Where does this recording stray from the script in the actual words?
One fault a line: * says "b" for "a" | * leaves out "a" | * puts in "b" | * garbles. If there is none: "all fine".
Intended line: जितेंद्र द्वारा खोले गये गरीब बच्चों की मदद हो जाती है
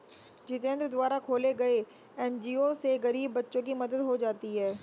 * puts in "एन.जी.ओ से"